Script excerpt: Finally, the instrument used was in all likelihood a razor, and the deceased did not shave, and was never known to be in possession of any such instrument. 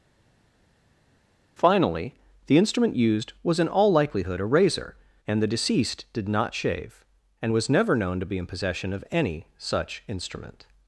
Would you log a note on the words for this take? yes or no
no